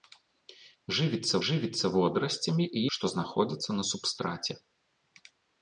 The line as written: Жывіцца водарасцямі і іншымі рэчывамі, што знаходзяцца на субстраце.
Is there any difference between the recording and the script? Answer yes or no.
yes